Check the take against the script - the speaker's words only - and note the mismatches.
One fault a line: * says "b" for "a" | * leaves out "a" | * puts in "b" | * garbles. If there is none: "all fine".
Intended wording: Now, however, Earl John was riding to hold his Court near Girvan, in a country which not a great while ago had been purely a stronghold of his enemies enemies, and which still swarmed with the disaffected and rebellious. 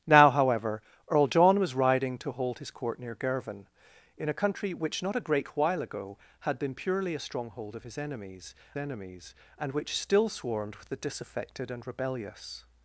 all fine